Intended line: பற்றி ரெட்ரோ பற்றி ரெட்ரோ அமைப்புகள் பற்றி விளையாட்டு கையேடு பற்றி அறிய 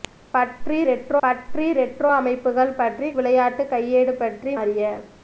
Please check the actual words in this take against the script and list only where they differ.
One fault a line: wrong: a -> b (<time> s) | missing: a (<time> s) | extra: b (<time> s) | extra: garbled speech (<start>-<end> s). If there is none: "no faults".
no faults